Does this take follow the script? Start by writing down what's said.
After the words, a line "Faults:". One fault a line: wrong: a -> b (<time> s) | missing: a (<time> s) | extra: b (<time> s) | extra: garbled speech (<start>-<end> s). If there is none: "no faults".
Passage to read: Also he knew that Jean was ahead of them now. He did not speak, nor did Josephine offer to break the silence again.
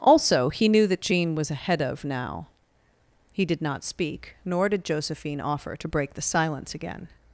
Also he knew that Jean was ahead of now. He did not speak, nor did Josephine offer to break the silence again.
Faults:
missing: them (2.0 s)